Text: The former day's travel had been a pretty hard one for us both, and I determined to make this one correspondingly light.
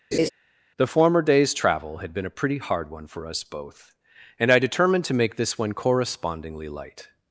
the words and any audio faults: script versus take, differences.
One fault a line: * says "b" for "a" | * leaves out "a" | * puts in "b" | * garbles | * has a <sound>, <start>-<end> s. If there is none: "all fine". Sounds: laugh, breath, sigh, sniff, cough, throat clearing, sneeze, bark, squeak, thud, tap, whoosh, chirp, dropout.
* has a laugh, 0.1-0.3 s